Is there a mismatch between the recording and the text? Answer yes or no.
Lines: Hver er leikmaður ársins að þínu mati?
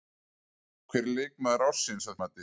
yes